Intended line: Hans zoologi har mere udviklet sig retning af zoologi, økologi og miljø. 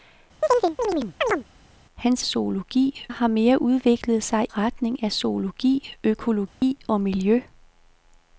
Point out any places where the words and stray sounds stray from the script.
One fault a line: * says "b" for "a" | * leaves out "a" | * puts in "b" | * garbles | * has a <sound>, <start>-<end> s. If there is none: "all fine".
* has a chirp, 0.4-1.4 s
* has a dropout, 6.5-6.6 s